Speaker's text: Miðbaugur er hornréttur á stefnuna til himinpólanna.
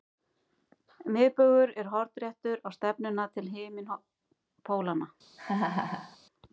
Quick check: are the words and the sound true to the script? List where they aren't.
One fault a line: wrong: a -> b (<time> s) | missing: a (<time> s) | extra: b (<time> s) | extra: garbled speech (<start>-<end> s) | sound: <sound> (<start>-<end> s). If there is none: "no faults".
sound: laugh (5.4-6.2 s)